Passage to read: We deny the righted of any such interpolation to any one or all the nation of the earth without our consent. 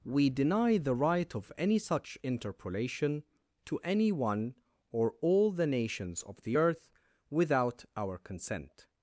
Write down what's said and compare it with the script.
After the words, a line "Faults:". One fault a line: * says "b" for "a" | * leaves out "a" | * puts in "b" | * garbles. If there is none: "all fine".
We deny the right of any such interpolation to any one or all the nations of the earth without our consent.
Faults:
* says "right" for "righted"
* says "nations" for "nation"